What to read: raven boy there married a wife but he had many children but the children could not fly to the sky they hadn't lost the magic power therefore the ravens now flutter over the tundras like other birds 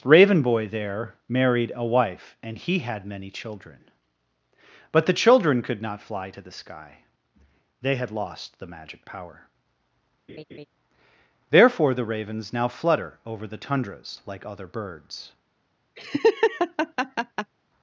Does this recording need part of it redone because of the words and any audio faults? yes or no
yes